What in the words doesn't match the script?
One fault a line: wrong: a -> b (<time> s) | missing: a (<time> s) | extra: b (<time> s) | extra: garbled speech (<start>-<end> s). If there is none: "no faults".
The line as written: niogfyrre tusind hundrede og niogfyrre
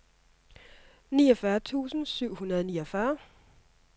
extra: syv (2.0 s)